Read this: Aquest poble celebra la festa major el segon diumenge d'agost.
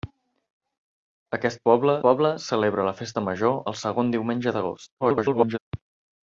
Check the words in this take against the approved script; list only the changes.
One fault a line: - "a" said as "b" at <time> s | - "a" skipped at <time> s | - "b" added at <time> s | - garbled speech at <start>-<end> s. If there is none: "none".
- "poble" added at 2.1 s
- garbled speech at 5.0-5.6 s